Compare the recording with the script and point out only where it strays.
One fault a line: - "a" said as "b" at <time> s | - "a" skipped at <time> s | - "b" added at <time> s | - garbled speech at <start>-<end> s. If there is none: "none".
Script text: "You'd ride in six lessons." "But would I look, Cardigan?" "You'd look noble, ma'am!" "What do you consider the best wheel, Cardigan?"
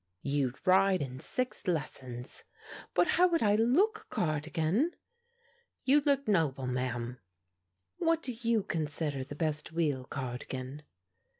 - "how" added at 3.1 s